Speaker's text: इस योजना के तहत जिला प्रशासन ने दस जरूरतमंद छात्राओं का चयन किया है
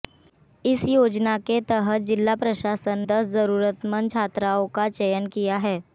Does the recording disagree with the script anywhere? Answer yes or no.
yes